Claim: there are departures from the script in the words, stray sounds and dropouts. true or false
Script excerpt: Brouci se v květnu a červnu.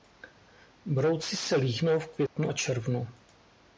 true